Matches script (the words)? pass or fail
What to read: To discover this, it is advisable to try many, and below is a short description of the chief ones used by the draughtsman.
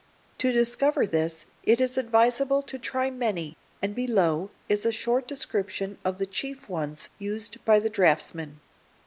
pass